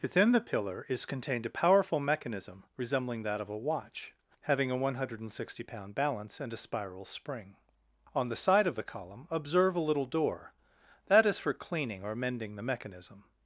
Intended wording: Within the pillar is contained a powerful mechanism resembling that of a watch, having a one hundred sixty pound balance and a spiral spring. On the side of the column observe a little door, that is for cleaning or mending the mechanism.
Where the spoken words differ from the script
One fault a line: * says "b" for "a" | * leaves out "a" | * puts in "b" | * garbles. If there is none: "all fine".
all fine